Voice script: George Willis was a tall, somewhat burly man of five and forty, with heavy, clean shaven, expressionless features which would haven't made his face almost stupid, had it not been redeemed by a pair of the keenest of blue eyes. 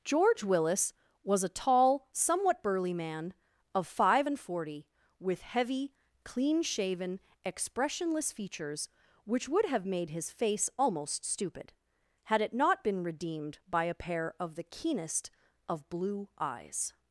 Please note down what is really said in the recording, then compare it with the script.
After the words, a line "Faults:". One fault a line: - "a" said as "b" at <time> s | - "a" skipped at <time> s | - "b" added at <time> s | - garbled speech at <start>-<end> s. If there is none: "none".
George Willis was a tall, somewhat burly man of five and forty, with heavy, clean shaven, expressionless features which would have made his face almost stupid, had it not been redeemed by a pair of the keenest of blue eyes.
Faults:
- "haven't" said as "have" at 9.6 s